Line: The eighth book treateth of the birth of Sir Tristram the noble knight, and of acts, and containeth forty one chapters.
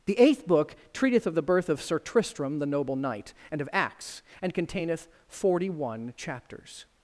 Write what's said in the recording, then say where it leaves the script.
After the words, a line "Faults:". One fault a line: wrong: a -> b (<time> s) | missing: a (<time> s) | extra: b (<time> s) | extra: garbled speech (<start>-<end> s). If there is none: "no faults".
The eighth book treateth of the birth of Sir Tristram the noble knight, and of acts, and containeth forty one chapters.
Faults:
no faults